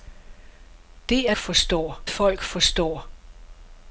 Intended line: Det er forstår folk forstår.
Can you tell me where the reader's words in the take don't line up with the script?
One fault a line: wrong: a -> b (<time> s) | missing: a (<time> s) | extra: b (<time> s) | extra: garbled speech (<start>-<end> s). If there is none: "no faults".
no faults